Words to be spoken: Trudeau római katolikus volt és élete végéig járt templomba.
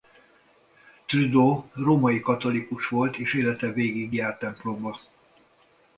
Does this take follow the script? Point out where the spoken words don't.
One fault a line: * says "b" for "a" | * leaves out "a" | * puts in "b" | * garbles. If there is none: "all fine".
all fine